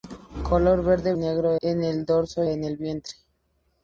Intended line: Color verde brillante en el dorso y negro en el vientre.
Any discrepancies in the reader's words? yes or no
yes